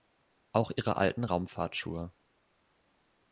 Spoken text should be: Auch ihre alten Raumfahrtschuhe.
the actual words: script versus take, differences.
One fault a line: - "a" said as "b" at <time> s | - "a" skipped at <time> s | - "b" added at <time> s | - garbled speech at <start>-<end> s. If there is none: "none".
none